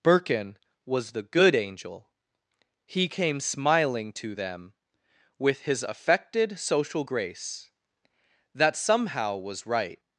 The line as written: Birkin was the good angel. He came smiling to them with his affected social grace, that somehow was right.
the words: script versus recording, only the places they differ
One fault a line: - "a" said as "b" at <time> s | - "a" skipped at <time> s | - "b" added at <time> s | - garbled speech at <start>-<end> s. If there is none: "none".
none